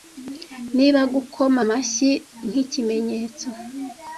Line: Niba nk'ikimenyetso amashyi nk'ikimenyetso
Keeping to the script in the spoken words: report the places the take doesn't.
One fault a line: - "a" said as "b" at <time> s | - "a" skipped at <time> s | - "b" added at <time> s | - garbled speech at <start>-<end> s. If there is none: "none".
- "nk'ikimenyetso" said as "gukoma" at 1.1 s